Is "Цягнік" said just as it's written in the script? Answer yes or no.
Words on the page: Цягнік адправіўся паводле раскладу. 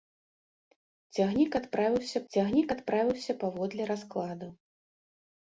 yes